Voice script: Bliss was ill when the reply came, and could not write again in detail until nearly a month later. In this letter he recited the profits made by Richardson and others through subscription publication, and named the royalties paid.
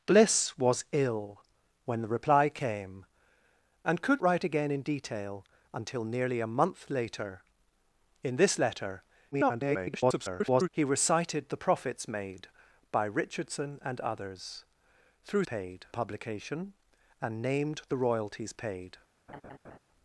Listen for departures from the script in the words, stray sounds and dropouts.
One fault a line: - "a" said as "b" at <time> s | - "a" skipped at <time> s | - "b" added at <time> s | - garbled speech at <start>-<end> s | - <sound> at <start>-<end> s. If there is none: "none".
- "not" skipped at 4.2 s
- garbled speech at 9.3-10.7 s
- "subscription" said as "paid" at 15.4 s
- laugh at 19.3-19.8 s